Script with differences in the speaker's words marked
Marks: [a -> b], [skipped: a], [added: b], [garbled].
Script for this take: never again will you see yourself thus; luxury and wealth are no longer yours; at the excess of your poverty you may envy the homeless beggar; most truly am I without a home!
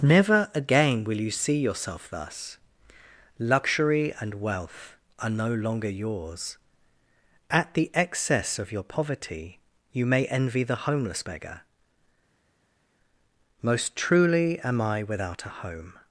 never again will you see yourself thus; luxury and wealth are no longer yours; at the excess of your poverty you may envy the homeless beggar; most truly am I without a home!